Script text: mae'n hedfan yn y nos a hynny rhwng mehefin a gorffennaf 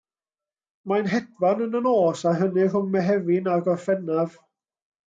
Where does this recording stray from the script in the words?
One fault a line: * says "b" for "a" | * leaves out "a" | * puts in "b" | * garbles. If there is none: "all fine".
all fine